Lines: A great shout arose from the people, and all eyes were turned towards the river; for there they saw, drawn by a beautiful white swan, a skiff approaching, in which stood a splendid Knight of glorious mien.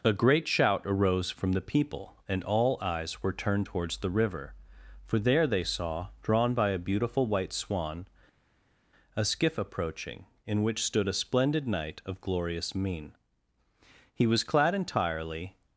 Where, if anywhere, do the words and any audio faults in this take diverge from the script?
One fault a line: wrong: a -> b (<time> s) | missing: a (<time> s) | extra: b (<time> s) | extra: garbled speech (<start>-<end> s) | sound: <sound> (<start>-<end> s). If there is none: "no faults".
extra: He was clad entirely (14.1 s)